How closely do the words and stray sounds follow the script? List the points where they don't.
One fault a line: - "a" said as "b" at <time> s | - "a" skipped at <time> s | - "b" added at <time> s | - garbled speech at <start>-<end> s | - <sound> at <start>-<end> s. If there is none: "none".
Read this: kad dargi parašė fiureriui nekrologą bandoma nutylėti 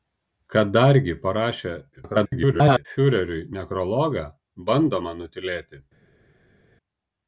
- garbled speech at 2.0-2.9 s